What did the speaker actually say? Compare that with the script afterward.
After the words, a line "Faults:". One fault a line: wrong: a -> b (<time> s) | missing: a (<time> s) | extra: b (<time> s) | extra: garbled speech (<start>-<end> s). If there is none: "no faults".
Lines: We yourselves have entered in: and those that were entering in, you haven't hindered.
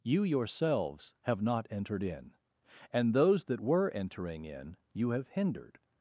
You yourselves have not entered in: and those that were entering in, you have hindered.
Faults:
wrong: We -> You (0.0 s)
extra: not (1.4 s)
wrong: haven't -> have (5.1 s)